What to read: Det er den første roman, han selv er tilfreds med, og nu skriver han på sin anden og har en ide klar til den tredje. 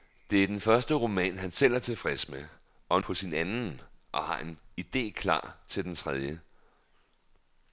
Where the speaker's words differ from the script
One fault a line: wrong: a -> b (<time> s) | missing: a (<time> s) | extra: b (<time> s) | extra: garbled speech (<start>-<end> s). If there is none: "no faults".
missing: nu skriver han (3.0 s)